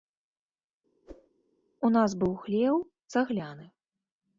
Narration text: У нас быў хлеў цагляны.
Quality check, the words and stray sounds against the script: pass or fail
fail